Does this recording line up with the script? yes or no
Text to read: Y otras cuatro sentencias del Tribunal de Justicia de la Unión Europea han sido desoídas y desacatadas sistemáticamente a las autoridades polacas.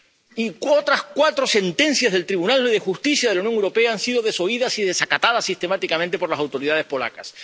no